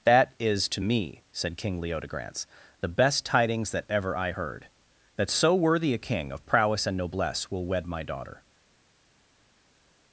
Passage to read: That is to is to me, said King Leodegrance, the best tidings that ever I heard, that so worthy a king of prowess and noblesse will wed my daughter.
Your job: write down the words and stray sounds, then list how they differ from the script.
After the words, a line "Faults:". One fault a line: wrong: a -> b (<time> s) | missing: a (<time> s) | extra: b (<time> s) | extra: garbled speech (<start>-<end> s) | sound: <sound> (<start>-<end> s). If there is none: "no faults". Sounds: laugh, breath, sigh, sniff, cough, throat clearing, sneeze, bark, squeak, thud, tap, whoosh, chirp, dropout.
That is to me, said King Leodegrance, the best tidings that ever I heard, that so worthy a king of prowess and noblesse will wed my daughter.
Faults:
missing: is to (0.8 s)